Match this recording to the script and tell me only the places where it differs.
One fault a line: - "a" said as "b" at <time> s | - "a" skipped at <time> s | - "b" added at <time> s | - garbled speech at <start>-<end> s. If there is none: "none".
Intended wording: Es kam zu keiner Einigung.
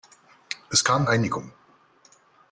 - "zu keiner" skipped at 1.1 s